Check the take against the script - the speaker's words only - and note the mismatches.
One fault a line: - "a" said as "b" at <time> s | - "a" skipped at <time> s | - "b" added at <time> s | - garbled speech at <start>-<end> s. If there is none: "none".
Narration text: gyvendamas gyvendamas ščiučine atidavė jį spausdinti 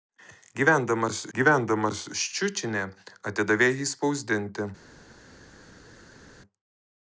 none